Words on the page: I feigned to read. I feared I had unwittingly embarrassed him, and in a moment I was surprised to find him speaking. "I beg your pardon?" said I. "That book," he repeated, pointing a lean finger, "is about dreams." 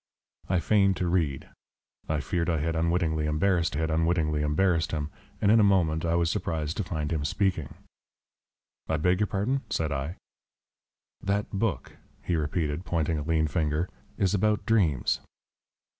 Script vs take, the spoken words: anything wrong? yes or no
yes